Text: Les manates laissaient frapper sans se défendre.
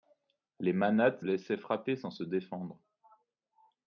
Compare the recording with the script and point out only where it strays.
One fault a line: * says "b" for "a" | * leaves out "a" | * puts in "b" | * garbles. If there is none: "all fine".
all fine